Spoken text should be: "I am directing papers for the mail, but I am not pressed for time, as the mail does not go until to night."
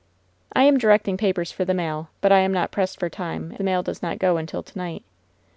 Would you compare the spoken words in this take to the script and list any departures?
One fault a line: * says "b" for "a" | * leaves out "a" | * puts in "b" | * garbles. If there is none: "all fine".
* leaves out "as"